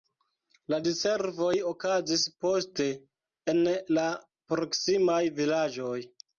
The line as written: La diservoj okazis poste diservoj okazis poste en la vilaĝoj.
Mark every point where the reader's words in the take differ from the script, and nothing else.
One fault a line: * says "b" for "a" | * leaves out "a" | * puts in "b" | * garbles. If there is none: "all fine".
* leaves out "diservoj okazis poste"
* puts in "proksimaj"